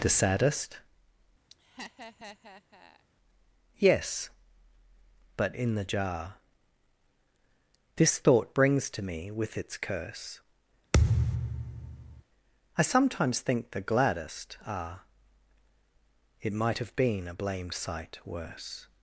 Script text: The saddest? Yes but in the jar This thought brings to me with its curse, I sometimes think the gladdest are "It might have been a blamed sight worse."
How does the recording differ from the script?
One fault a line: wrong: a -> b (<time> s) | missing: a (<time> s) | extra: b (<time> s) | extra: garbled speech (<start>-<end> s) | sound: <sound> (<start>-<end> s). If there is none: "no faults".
sound: laugh (1.5-3.1 s)
sound: thud (10.9-12.2 s)